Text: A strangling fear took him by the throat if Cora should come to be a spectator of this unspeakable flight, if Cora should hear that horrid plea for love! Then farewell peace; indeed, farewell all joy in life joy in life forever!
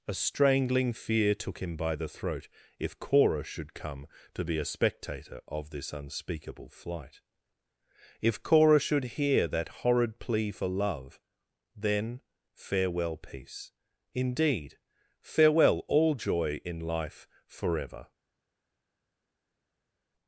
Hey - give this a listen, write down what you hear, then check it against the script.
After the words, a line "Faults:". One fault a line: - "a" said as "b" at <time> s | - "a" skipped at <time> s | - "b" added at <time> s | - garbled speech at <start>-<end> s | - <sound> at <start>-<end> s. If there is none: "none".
A strangling fear took him by the throat if Cora should come to be a spectator of this unspeakable flight, if Cora should hear that horrid plea for love! Then farewell peace; indeed, farewell all joy in life forever!
Faults:
- "joy in life" skipped at 17.3 s